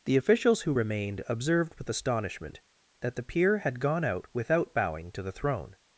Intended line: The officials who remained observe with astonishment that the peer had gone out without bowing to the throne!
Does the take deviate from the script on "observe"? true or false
true